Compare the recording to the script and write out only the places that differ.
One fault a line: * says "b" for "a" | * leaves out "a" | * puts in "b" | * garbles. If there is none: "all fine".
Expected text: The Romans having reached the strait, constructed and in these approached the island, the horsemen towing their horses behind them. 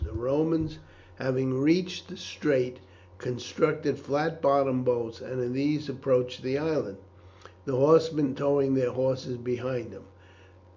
* puts in "flat bottomed boats"